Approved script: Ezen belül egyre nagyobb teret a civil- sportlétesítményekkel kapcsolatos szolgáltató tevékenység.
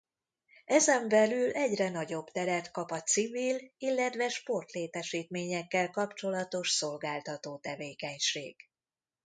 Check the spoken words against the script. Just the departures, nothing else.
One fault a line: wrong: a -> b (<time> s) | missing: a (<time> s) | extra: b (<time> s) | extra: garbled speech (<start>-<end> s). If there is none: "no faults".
extra: kap (2.7 s)
extra: illetve (3.8 s)